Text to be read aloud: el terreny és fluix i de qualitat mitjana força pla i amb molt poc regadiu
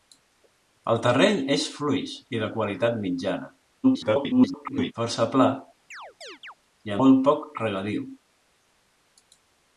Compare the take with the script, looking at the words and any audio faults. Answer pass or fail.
fail